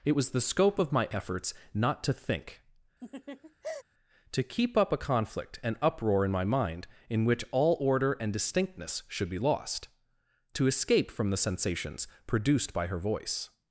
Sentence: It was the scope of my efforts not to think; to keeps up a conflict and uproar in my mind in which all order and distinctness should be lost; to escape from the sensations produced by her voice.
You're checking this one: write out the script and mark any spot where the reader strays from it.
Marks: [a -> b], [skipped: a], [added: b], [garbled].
It was the scope of my efforts not to think; to [keeps -> keep] up a conflict and uproar in my mind in which all order and distinctness should be lost; to escape from the sensations produced by her voice.